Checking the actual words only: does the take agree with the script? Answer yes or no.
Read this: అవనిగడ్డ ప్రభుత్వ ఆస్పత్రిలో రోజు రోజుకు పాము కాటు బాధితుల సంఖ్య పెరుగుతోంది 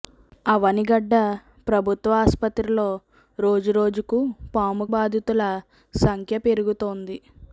no